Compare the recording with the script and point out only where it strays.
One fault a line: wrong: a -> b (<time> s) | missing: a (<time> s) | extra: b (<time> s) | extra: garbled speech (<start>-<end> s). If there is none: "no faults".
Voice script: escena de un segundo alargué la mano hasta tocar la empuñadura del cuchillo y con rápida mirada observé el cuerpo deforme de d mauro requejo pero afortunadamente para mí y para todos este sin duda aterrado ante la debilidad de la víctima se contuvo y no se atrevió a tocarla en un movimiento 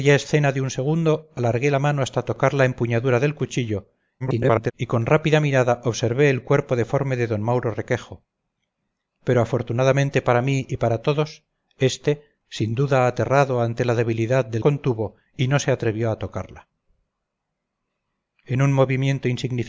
extra: garbled speech (4.2-4.7 s)
missing: la víctima se (14.6 s)